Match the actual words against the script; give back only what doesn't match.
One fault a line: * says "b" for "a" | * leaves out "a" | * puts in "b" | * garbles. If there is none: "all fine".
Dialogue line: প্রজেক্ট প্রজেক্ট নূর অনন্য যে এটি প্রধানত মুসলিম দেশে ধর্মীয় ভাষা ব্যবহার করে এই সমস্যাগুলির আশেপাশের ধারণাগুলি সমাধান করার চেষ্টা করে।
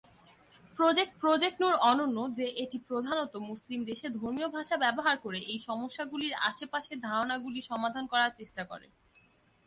all fine